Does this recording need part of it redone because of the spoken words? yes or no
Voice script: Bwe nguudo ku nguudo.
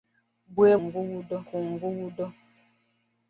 no